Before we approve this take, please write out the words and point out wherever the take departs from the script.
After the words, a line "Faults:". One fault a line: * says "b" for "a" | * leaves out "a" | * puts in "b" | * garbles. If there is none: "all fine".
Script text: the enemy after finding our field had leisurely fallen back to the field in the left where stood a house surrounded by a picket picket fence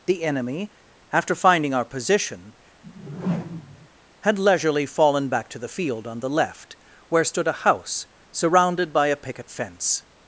the enemy after finding our position had leisurely fallen back to the field on the left where stood a house surrounded by a picket fence
Faults:
* says "position" for "field"
* says "on" for "in"
* leaves out "picket"